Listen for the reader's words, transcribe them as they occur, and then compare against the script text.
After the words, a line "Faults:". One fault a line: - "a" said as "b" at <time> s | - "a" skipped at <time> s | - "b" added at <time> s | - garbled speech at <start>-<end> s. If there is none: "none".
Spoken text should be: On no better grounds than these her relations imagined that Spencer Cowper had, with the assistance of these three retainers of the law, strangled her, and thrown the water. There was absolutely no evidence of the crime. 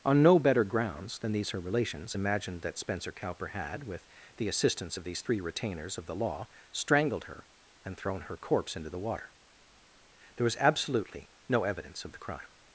On no better grounds than these her relations imagined that Spencer Cowper had, with the assistance of these three retainers of the law, strangled her, and thrown her corpse into the water. There was absolutely no evidence of the crime.
Faults:
- "her corpse into" added at 8.2 s